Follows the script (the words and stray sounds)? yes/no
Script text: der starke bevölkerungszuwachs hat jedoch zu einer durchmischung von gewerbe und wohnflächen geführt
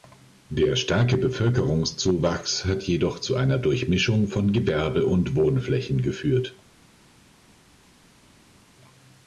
yes